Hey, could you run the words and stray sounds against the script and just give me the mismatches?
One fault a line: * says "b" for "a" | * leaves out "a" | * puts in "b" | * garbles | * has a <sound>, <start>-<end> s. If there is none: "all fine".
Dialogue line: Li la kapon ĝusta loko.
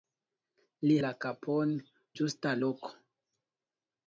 all fine